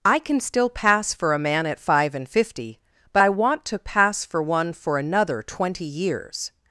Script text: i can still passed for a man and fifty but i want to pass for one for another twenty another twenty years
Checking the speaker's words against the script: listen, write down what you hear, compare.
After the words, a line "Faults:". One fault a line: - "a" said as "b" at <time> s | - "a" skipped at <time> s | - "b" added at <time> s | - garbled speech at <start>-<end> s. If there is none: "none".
i can still pass for a man at five and fifty but i want to pass for one for another twenty years
Faults:
- "passed" said as "pass" at 0.7 s
- "at five" added at 1.7 s
- "another twenty" skipped at 5.9 s